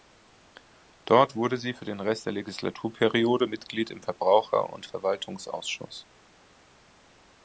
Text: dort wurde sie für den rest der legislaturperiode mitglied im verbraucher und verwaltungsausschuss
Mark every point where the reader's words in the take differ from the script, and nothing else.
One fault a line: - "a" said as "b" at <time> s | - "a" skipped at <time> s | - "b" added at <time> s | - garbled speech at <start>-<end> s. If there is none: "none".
none